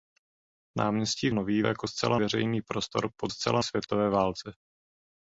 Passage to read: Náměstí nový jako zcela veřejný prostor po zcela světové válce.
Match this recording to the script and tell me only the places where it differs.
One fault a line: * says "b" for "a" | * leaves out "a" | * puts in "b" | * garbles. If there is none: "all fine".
all fine